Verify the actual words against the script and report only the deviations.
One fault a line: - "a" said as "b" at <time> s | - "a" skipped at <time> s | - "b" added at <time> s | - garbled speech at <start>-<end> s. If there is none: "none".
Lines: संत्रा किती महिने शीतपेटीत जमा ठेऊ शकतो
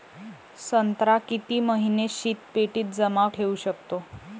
none